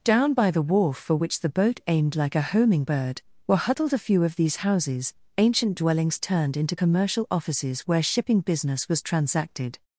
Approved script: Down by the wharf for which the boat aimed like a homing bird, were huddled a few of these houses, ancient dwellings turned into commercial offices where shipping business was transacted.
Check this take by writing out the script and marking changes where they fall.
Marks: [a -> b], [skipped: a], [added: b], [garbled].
Down by the wharf for which the boat aimed like a homing bird, were huddled a few of these houses, ancient dwellings turned into commercial offices where shipping business was transacted.